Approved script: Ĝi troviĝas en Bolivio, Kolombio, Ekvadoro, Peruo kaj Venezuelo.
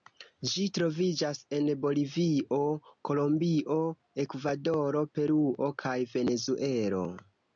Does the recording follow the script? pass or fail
pass